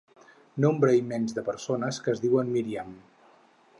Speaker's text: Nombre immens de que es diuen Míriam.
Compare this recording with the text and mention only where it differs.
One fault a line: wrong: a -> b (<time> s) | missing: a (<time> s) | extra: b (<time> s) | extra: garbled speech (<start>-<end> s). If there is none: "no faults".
extra: persones (1.5 s)